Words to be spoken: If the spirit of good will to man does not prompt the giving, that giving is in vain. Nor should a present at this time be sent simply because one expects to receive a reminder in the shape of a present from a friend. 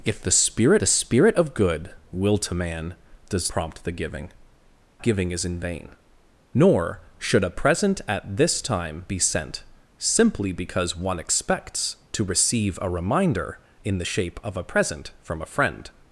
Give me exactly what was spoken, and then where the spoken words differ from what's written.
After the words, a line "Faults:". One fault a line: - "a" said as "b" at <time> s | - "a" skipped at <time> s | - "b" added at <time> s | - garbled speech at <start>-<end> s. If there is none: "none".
If the spirit the spirit of good will to man does prompt the giving, giving is in vain. Nor should a present at this time be sent simply because one expects to receive a reminder in the shape of a present from a friend.
Faults:
- "the spirit" added at 0.8 s
- "not" skipped at 3.5 s
- "that" skipped at 4.3 s